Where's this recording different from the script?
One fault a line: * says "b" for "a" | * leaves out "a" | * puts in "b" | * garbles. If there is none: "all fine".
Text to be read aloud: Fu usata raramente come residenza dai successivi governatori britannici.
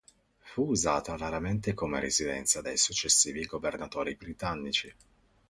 all fine